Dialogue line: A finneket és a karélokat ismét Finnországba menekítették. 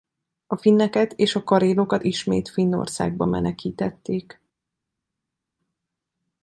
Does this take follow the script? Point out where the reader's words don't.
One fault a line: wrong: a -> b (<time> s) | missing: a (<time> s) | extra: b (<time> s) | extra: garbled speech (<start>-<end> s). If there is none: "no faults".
no faults